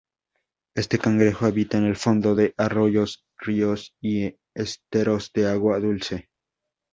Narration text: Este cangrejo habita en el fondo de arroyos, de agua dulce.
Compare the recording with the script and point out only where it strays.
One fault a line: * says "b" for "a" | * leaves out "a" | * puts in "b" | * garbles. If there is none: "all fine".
* puts in "ríos y esteros"